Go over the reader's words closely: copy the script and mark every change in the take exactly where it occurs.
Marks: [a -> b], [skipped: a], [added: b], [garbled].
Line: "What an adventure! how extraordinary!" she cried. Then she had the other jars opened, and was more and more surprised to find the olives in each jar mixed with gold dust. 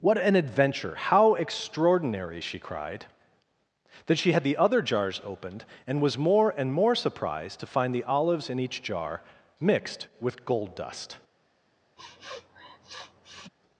"What an adventure! how extraordinary!" she cried. Then she had the other jars opened, and was more and more surprised to find the olives in each jar mixed with gold dust.